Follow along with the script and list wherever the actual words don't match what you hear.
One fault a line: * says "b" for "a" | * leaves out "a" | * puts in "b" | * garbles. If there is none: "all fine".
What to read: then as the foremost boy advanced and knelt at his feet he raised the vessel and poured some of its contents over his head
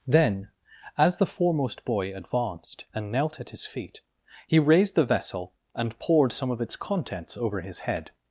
all fine